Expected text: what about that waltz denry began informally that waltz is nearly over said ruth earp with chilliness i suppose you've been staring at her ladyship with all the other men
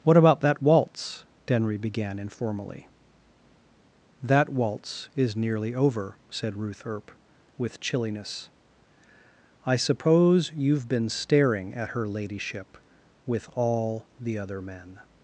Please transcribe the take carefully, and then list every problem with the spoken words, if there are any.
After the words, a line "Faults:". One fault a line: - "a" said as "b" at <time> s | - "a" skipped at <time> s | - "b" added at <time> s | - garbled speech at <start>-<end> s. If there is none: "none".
what about that waltz denry began informally that waltz is nearly over said ruth earp with chilliness i suppose you've been staring at her ladyship with all the other men
Faults:
none